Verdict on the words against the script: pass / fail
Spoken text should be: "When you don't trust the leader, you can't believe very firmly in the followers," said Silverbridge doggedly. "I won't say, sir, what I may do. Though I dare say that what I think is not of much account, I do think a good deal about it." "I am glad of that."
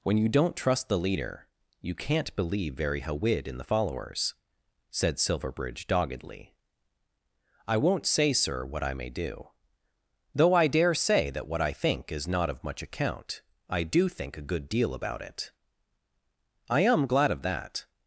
fail